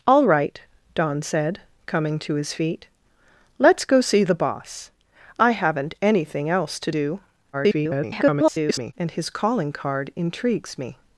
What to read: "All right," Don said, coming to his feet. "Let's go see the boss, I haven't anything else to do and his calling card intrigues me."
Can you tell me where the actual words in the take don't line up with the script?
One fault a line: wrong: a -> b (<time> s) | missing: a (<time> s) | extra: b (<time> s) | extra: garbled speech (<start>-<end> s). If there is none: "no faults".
extra: garbled speech (7.5-8.9 s)